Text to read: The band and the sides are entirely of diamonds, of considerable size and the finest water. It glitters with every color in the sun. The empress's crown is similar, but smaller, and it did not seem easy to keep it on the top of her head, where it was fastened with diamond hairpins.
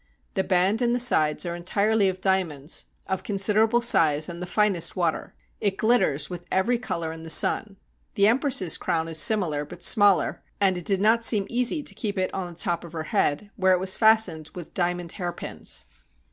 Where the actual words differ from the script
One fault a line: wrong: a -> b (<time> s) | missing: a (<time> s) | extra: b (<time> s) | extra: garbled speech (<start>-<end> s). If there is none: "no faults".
no faults